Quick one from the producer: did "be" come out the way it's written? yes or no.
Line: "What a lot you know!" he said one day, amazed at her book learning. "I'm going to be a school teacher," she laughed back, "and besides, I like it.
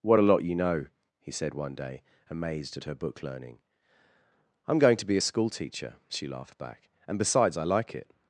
yes